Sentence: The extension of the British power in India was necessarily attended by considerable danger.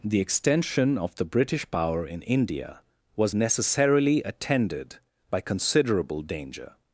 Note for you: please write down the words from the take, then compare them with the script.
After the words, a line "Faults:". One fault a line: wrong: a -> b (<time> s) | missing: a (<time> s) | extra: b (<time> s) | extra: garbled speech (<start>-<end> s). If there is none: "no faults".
The extension of the British power in India was necessarily attended by considerable danger.
Faults:
no faults